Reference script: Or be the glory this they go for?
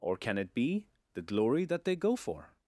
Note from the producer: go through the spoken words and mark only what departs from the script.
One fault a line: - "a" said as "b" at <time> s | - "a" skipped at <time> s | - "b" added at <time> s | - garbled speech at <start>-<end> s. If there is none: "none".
- "can it" added at 0.2 s
- "this" said as "that" at 1.6 s